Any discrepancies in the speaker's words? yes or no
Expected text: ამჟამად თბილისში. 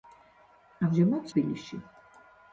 no